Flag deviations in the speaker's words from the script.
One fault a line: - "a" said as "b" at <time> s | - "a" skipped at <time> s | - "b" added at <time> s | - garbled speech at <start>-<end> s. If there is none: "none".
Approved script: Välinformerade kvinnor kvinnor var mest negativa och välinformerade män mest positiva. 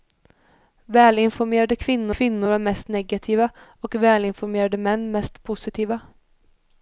none